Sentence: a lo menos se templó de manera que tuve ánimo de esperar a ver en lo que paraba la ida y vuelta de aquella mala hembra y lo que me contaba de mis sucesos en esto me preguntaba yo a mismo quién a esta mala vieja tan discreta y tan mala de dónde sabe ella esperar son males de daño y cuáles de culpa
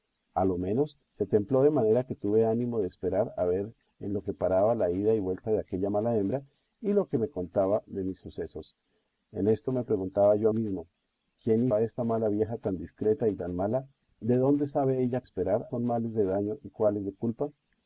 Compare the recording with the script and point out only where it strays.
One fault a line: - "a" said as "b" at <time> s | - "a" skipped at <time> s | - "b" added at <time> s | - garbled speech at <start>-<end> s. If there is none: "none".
none